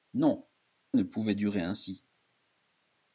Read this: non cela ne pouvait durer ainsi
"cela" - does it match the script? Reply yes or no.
no